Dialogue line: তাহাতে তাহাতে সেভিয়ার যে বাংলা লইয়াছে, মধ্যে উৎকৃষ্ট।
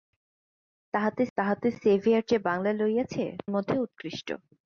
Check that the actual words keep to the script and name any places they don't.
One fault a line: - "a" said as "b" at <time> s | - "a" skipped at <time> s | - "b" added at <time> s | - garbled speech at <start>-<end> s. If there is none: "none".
none